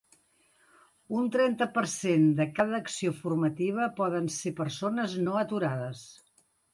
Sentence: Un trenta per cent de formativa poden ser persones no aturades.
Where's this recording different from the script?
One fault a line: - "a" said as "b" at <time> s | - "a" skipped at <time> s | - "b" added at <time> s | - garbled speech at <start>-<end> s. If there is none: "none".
- "cada acció" added at 2.6 s